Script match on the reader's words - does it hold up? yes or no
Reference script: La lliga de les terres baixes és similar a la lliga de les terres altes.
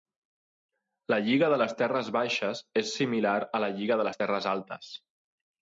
yes